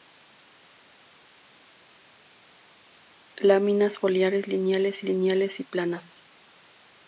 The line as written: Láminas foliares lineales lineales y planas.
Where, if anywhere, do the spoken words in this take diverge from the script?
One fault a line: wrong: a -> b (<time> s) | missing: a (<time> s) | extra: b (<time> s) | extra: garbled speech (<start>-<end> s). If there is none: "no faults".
no faults